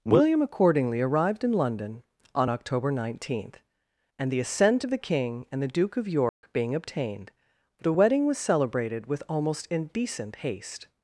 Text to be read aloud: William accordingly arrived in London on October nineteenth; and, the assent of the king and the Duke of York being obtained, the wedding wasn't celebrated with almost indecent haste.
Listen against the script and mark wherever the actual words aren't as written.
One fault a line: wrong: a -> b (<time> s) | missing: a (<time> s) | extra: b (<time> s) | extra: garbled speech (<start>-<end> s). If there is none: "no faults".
wrong: wasn't -> was (8.2 s)